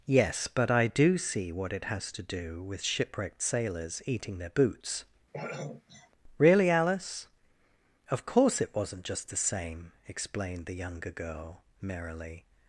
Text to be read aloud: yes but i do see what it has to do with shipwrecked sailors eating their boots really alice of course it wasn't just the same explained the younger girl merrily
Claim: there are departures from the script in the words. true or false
false